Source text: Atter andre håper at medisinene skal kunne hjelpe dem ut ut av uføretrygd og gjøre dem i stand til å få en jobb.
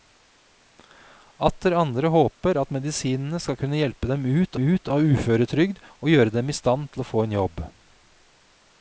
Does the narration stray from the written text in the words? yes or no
no